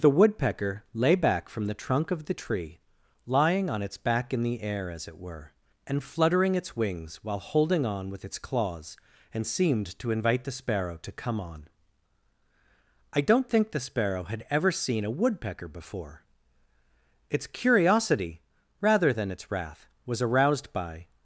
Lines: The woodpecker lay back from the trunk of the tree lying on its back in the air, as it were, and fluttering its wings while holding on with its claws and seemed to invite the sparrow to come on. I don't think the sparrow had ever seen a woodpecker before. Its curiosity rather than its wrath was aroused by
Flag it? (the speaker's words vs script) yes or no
no